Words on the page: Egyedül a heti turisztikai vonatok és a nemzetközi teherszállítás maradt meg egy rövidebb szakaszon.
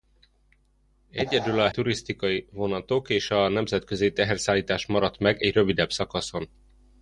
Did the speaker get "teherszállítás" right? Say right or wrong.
right